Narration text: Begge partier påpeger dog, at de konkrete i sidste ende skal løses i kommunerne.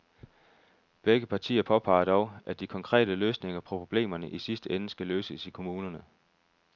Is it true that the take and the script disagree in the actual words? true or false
true